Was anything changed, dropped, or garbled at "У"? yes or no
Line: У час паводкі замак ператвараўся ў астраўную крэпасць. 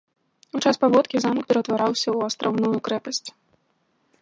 no